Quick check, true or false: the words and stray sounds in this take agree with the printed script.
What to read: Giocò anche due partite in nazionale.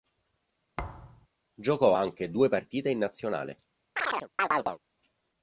false